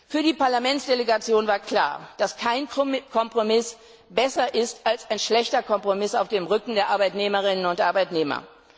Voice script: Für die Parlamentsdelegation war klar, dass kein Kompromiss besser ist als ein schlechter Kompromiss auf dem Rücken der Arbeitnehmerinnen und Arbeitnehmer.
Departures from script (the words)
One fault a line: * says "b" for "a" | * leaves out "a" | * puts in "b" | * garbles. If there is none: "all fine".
all fine